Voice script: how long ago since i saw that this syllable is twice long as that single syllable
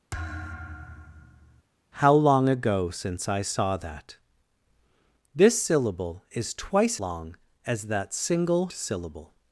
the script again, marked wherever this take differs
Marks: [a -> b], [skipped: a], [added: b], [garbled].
how long ago since i saw that this syllable is twice long as that single syllable